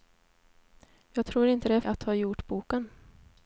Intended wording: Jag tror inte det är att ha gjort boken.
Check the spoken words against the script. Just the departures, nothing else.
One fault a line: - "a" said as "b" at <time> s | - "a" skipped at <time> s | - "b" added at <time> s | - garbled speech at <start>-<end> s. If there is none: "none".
none